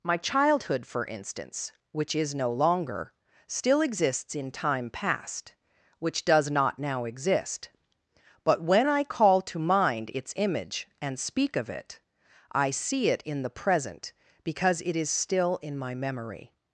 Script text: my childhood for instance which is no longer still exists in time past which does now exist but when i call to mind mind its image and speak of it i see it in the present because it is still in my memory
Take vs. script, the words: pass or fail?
fail